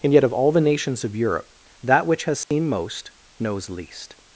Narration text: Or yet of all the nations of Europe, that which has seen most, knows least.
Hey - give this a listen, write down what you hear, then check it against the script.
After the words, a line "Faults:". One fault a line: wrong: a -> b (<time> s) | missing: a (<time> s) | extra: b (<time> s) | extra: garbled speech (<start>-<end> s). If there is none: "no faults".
And yet of all the nations of Europe, that which has seen most, knows least.
Faults:
wrong: Or -> And (0.0 s)